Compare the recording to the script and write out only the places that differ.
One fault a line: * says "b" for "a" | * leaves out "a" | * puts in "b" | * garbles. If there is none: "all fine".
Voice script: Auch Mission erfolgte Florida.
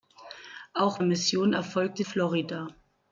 all fine